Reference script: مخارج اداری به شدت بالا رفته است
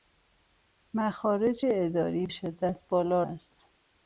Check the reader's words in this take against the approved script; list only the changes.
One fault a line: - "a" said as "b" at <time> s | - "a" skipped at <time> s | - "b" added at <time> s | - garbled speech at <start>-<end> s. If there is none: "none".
- "به" skipped at 2.3 s
- "رفته" skipped at 3.2 s